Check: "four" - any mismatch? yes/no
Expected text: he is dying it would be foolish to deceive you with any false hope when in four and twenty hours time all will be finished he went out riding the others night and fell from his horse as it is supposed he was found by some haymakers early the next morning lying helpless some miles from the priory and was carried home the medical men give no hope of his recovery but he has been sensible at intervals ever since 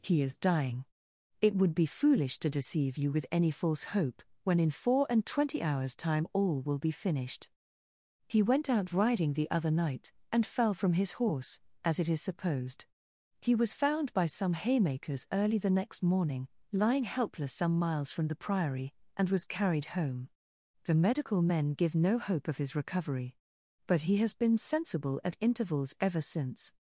no